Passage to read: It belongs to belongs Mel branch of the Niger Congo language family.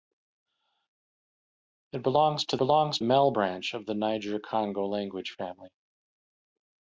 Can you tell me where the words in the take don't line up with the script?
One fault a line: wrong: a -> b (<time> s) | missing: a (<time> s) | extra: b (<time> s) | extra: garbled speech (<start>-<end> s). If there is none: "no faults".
no faults